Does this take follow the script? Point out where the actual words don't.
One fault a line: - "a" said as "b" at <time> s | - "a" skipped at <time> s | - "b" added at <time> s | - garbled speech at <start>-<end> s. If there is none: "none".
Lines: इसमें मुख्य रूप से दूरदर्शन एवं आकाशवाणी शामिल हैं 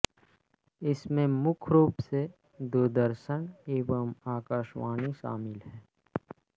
none